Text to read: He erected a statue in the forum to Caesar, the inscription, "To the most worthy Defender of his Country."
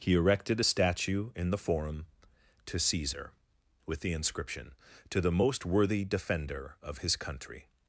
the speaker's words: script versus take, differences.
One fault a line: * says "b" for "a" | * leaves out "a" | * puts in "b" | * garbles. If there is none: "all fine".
* puts in "with"